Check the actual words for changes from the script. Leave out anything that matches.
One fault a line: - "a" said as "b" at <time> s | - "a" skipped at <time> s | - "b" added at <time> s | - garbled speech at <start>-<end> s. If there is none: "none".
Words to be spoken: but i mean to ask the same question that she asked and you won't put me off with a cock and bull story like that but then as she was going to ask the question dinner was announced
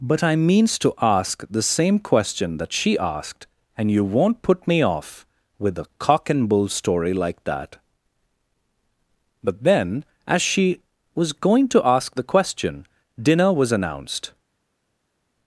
- "mean" said as "means" at 0.3 s